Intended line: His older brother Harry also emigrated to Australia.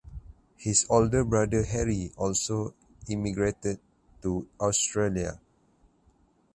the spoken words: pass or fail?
pass